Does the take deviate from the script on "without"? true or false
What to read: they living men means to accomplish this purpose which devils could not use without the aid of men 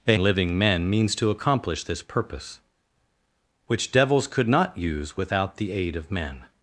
false